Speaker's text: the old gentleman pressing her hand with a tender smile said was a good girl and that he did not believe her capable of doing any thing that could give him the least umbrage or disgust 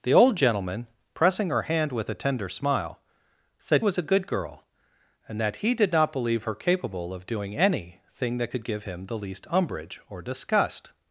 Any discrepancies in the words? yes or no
no